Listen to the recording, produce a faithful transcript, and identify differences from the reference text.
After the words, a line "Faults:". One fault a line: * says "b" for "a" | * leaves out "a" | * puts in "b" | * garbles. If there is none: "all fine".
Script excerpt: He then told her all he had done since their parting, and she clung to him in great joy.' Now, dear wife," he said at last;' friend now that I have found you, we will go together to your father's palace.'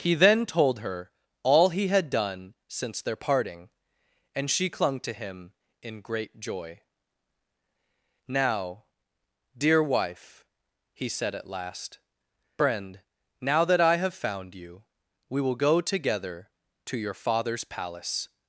He then told her all he had done since their parting, and she clung to him in great joy.' Now, dear wife," he said at last;' friend now that I have found you, we will go together to your father's palace.'
Faults:
all fine